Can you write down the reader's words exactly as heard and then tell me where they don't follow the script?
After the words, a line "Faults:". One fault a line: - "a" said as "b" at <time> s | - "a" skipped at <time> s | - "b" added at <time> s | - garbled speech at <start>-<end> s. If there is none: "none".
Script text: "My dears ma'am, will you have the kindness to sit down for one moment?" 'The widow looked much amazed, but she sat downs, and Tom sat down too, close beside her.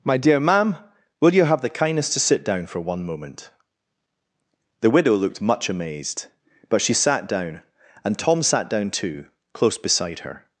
"My dear ma'am, will you have the kindness to sit down for one moment?" 'The widow looked much amazed, but she sat down, and Tom sat down too, close beside her.
Faults:
- "dears" said as "dear" at 0.2 s
- "downs" said as "down" at 7.3 s